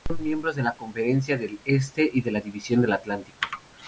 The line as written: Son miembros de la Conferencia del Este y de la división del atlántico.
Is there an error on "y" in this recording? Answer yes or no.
no